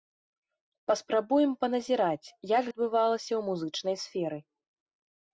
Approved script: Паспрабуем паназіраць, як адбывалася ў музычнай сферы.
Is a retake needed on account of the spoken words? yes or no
no